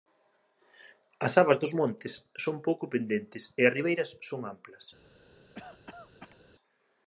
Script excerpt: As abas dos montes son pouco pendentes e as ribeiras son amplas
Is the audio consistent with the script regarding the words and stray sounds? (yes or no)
no